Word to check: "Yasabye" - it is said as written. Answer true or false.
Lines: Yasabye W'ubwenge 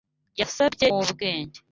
true